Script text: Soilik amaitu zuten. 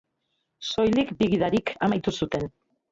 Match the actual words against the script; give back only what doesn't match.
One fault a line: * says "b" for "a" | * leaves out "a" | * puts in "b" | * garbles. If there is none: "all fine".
* puts in "bi gidarik"